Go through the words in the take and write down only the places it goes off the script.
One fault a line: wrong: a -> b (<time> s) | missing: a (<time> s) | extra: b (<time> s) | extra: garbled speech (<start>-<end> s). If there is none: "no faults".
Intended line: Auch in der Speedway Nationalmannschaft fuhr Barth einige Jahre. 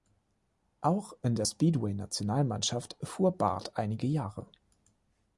no faults